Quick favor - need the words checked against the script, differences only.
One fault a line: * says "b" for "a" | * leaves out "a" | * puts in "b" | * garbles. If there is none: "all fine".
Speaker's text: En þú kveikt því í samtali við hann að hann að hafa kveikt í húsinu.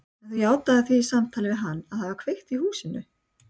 * says "játaðir" for "kveikt"
* leaves out "hann að"